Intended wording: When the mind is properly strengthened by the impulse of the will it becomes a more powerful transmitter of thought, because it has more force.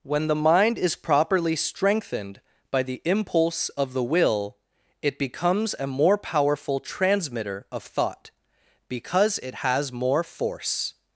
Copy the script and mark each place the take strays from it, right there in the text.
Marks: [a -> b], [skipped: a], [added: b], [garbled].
When the mind is properly strengthened by the impulse of the will it becomes a more powerful transmitter of thought, because it has more force.